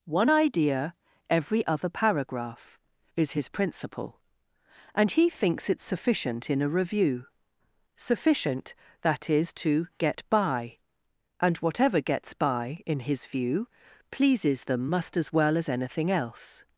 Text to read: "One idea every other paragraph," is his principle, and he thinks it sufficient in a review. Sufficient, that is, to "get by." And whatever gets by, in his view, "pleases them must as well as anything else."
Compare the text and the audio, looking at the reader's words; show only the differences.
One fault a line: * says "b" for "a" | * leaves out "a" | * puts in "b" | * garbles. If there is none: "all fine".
all fine